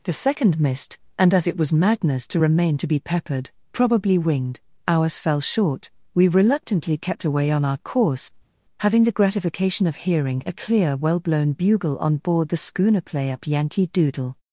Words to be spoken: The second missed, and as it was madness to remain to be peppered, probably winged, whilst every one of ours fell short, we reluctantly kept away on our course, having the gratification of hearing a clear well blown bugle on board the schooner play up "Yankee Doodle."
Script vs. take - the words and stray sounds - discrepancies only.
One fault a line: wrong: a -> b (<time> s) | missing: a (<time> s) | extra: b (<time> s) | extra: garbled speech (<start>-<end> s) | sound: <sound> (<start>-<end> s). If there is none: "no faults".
missing: whilst every one of (4.6 s)